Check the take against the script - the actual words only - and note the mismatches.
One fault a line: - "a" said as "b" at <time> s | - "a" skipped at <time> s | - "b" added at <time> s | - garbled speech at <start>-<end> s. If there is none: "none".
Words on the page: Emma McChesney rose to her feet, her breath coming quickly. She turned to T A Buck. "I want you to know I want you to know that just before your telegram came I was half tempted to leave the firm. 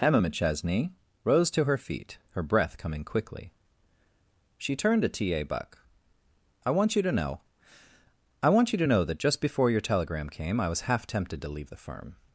none